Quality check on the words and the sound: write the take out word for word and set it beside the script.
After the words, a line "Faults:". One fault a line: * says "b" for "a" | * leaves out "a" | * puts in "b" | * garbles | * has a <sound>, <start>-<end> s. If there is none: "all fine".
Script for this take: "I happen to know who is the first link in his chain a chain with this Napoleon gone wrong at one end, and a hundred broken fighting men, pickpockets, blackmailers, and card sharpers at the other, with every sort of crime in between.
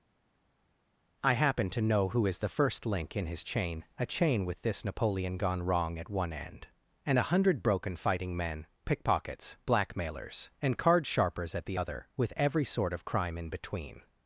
"I happen to know who is the first link in his chain a chain with this Napoleon gone wrong at one end, and a hundred broken fighting men, pickpockets, blackmailers, and card sharpers at the other, with every sort of crime in between.
Faults:
all fine